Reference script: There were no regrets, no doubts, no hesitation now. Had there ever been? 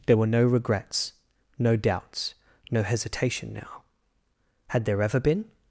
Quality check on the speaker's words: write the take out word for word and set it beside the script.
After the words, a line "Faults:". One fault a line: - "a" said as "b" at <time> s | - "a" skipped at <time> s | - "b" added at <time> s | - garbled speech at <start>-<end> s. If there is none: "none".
There were no regrets, no doubts, no hesitation now. Had there ever been?
Faults:
none